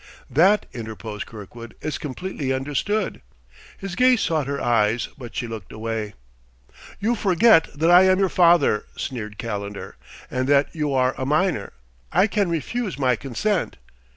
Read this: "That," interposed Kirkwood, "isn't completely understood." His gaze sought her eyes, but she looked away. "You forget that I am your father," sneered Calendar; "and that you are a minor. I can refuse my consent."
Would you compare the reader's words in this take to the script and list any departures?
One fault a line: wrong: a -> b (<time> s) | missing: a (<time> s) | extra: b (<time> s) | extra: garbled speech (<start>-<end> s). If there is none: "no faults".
wrong: isn't -> is (1.8 s)